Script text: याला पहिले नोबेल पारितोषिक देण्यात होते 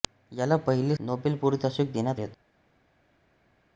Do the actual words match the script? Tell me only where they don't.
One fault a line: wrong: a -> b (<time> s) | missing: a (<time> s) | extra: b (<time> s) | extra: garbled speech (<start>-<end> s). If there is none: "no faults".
no faults